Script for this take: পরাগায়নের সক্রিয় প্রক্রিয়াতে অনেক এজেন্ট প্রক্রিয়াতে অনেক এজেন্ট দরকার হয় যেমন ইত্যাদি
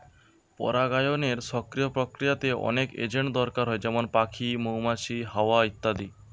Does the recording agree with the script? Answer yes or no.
no